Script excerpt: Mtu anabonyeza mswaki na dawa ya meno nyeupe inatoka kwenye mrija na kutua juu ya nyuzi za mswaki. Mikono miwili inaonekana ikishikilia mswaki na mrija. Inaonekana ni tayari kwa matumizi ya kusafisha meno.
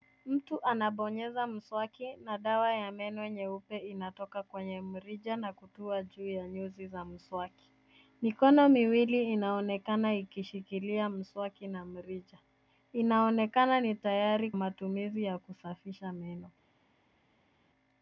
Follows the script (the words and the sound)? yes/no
no